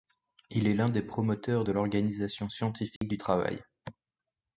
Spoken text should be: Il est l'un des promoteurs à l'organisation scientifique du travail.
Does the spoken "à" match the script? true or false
false